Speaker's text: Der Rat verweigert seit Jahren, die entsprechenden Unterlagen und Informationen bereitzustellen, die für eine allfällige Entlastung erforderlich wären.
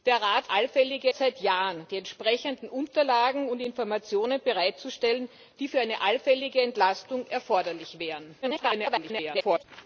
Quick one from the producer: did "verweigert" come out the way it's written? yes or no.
no